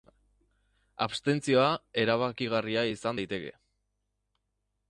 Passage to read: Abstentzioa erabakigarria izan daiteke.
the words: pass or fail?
pass